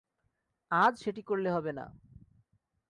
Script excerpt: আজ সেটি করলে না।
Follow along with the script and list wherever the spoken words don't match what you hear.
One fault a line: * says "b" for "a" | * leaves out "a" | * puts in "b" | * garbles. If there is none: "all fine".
* puts in "হবে"